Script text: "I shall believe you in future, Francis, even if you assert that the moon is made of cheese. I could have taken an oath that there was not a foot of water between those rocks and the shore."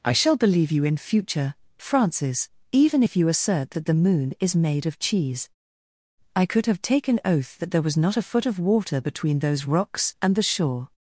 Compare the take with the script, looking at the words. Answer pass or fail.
fail